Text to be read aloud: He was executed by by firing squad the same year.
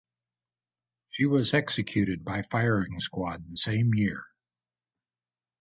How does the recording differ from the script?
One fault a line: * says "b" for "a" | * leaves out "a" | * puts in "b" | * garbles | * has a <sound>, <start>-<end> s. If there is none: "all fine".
* says "She" for "He"
* leaves out "by"